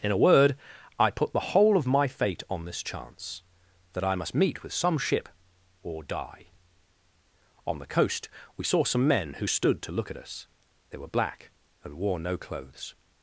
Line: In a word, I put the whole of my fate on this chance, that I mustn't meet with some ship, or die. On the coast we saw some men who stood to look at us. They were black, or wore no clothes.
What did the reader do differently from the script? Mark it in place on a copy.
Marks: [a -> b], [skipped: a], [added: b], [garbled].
In a word, I put the whole of my fate on this chance, that I [mustn't -> must] meet with some ship, or die. On the coast we saw some men who stood to look at us. They were black, [or -> and] wore no clothes.